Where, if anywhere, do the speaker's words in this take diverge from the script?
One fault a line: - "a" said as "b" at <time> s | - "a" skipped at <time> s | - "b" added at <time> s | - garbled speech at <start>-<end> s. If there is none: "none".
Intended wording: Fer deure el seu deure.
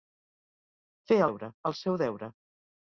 none